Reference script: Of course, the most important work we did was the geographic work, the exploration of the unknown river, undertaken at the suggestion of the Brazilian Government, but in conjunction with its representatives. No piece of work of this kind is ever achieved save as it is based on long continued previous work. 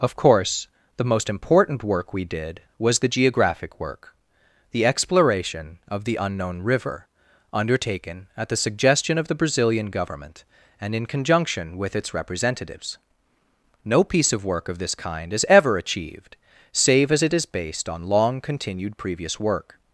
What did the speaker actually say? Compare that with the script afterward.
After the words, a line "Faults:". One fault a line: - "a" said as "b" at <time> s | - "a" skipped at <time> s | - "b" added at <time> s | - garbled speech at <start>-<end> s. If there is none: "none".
Of course, the most important work we did was the geographic work, the exploration of the unknown river, undertaken at the suggestion of the Brazilian Government, and in conjunction with its representatives. No piece of work of this kind is ever achieved save as it is based on long continued previous work.
Faults:
- "but" said as "and" at 10.8 s